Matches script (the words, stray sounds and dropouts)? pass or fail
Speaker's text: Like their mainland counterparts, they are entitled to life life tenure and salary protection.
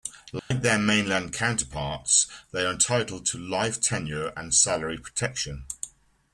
fail